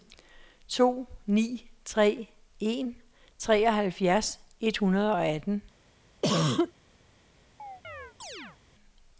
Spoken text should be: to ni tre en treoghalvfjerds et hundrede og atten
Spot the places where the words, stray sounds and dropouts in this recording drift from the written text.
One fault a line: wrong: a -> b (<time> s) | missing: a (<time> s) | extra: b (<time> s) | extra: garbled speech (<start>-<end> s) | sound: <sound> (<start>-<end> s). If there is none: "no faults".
sound: cough (6.2-6.7 s)
sound: chirp (7.6-8.6 s)